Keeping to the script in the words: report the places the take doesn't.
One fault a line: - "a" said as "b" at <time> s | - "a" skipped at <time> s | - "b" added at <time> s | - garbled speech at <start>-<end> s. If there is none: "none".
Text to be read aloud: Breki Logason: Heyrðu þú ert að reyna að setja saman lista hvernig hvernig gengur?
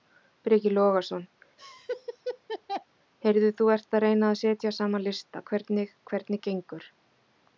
none